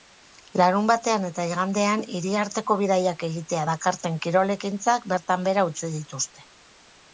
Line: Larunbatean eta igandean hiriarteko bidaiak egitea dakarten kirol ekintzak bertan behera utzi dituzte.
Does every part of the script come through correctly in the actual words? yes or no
yes